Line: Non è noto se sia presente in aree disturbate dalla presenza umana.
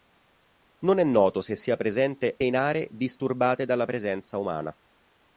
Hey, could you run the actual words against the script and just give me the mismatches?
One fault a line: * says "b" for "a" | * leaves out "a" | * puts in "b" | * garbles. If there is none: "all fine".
all fine